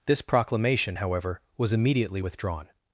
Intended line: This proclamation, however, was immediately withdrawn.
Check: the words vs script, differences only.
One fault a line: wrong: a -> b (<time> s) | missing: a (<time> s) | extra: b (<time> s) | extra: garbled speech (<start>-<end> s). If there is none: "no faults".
no faults